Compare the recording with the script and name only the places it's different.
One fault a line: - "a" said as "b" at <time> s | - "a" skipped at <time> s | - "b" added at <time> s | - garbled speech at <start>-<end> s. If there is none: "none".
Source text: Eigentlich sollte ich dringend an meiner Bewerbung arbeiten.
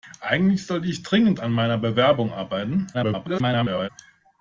- garbled speech at 2.9-3.9 s